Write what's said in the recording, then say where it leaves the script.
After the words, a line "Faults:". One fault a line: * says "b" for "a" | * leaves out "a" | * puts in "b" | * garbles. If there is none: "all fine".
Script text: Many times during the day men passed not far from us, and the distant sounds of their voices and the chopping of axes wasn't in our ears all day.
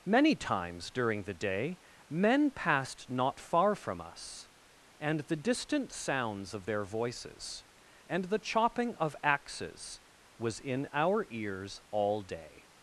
Many times during the day men passed not far from us, and the distant sounds of their voices and the chopping of axes was in our ears all day.
Faults:
* says "was" for "wasn't"